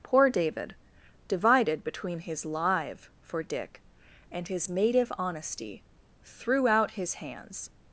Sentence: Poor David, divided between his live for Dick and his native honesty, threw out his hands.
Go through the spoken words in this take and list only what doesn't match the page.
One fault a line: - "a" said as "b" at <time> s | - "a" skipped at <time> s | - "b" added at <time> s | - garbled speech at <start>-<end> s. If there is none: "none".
none